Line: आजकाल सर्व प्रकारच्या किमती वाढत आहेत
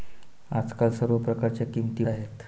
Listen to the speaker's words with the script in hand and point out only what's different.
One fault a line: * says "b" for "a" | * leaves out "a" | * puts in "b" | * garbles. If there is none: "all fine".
* leaves out "वाढत"